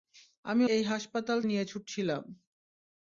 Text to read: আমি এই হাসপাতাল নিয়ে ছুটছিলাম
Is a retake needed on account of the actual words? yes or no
no